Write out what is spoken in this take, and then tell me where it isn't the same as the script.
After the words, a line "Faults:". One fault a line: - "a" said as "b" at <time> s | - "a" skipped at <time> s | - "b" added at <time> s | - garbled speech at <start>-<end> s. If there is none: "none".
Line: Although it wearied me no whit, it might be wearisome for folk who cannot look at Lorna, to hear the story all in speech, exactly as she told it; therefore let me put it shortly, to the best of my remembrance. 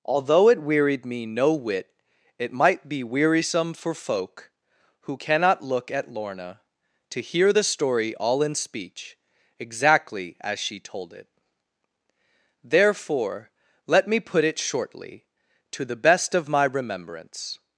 Although it wearied me no whit, it might be wearisome for folk who cannot look at Lorna, to hear the story all in speech, exactly as she told it; therefore let me put it shortly, to the best of my remembrance.
Faults:
none